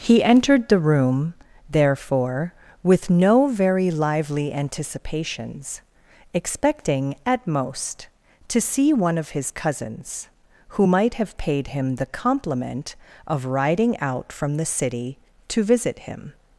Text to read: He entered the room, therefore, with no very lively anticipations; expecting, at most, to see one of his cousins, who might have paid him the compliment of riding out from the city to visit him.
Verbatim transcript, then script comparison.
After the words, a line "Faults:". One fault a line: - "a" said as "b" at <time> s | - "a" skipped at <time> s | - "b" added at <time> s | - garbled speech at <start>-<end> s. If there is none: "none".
He entered the room, therefore, with no very lively anticipations; expecting, at most, to see one of his cousins, who might have paid him the compliment of riding out from the city to visit him.
Faults:
none